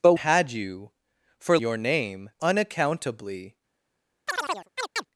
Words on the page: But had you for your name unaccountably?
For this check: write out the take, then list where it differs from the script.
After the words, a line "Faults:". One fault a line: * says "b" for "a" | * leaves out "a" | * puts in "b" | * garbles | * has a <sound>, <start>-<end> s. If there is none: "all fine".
But had you for your name unaccountably?
Faults:
* has a chirp, 4.3-5.1 s